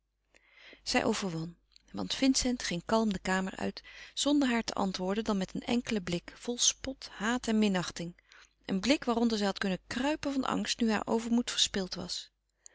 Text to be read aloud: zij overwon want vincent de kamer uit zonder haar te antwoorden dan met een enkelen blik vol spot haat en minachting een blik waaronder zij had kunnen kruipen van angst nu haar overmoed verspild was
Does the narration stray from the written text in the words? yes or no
yes